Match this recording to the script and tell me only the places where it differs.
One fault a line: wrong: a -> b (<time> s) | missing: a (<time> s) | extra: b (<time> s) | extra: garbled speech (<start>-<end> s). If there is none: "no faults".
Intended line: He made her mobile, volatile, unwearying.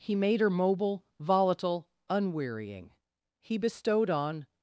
extra: He bestowed on (3.4 s)